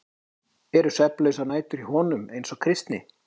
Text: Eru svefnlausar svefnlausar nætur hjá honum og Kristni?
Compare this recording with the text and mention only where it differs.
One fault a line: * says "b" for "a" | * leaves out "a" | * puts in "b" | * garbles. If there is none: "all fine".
* leaves out "svefnlausar"
* puts in "eins"